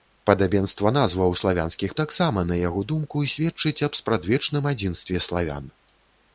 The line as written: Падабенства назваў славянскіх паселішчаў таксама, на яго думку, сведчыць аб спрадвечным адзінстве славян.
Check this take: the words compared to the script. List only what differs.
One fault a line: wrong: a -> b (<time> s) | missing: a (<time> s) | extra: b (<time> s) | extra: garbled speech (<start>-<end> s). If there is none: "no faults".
missing: паселішчаў (1.9 s)